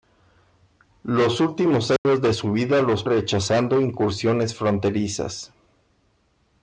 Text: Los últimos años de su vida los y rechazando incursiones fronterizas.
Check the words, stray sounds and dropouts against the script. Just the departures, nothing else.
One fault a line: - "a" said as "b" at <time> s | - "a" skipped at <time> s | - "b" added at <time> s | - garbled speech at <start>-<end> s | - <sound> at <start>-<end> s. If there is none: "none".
- dropout at 2.0-2.0 s